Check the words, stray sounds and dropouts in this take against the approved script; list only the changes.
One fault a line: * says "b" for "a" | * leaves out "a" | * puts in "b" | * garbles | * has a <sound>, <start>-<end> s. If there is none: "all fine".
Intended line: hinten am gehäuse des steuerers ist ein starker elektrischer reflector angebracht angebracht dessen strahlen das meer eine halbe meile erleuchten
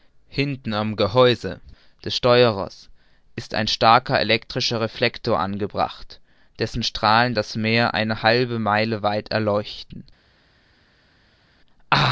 * leaves out "angebracht"
* puts in "weit"